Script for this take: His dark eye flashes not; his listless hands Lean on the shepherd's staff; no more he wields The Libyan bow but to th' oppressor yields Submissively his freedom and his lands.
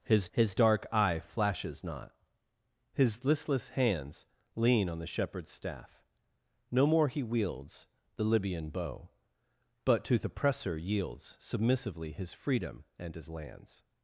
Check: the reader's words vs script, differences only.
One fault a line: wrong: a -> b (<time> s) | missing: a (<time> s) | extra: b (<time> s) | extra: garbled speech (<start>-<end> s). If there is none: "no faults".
extra: his (0.3 s)